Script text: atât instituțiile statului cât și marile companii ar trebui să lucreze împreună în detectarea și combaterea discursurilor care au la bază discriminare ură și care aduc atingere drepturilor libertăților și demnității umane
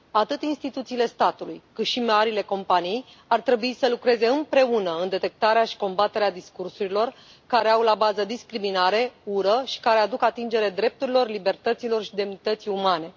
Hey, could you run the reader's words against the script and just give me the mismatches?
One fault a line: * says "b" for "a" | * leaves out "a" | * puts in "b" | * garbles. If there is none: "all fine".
all fine